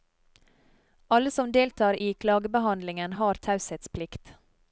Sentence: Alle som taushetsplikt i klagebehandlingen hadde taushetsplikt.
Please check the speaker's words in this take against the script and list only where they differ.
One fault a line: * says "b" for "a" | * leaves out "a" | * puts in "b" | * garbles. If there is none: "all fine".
* says "deltar" for "taushetsplikt"
* says "har" for "hadde"